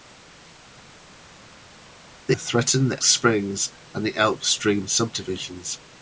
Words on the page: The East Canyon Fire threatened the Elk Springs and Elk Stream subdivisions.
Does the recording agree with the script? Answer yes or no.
no